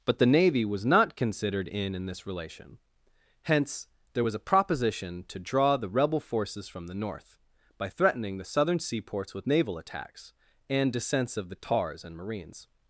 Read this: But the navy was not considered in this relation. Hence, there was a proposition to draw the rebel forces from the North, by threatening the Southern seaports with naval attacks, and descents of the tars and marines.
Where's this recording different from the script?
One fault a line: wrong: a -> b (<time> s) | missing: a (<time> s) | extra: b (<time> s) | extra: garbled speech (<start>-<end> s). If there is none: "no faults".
extra: in (1.9 s)